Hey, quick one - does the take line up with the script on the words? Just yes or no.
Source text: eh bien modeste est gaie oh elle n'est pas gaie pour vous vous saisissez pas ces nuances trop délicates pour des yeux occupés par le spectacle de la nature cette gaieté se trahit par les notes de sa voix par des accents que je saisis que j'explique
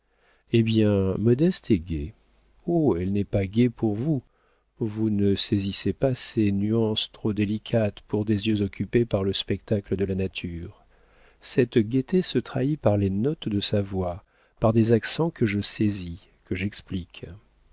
no